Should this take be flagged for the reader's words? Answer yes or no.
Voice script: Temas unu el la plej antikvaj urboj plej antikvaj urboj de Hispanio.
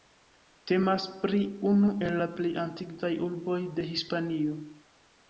yes